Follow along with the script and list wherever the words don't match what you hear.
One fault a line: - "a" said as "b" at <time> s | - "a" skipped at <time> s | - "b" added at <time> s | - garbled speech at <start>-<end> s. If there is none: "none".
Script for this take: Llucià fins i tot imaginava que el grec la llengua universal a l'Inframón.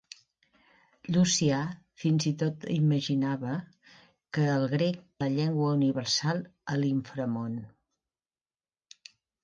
none